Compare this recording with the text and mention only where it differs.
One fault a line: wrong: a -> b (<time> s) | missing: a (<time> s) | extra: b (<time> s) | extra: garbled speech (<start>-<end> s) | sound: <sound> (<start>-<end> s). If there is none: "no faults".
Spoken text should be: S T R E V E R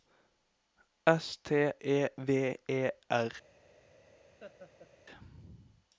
missing: R (1.7 s)
sound: laugh (4.4-4.9 s)